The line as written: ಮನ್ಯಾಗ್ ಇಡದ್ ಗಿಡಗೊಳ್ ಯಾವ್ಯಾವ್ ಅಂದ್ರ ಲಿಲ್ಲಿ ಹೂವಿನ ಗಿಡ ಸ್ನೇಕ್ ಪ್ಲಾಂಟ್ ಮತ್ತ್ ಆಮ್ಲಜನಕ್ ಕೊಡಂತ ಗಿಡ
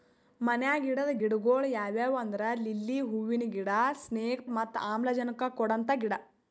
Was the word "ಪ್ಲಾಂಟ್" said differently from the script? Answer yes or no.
yes